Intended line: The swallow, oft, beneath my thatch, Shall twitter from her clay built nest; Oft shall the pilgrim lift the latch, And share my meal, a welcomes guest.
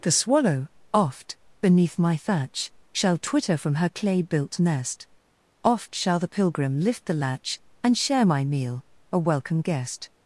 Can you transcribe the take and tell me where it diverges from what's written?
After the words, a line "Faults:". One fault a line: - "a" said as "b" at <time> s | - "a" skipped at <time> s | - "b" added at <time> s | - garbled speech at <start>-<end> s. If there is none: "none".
The swallow, oft, beneath my thatch, Shall twitter from her clay built nest; Oft shall the pilgrim lift the latch, And share my meal, a welcome guest.
Faults:
- "welcomes" said as "welcome" at 9.2 s